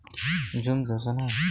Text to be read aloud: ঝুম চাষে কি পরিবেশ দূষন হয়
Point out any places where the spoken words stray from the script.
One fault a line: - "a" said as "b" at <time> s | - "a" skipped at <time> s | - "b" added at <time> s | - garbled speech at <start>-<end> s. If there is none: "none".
- "চাষে কি পরিবেশ" skipped at 0.8 s